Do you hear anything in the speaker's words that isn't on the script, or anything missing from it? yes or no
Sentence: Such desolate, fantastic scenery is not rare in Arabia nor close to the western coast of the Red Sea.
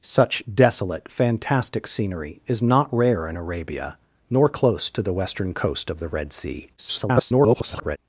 yes